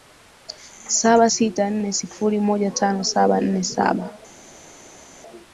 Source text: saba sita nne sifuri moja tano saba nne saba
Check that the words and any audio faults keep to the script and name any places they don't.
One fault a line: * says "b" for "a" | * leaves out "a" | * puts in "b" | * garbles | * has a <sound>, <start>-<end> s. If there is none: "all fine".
all fine